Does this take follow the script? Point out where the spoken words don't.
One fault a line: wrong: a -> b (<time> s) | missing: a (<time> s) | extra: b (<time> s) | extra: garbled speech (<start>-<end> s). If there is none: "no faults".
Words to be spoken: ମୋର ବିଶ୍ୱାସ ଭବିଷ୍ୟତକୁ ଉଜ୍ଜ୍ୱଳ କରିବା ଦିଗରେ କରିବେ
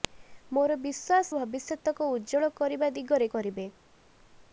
no faults